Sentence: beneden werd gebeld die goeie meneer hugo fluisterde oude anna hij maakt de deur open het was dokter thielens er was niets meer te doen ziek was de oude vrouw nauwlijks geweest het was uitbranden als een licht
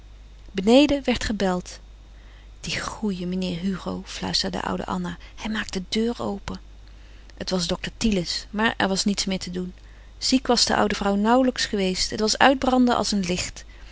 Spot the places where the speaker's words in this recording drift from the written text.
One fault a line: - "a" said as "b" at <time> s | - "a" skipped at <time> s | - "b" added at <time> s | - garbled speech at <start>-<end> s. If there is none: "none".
- "maar" added at 8.5 s